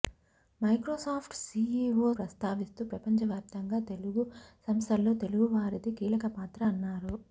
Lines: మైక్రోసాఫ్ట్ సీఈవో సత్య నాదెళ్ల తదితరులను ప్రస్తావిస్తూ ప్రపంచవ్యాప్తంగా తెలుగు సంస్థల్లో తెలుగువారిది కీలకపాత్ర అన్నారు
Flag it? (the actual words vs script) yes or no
yes